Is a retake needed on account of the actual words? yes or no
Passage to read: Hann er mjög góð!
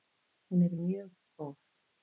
yes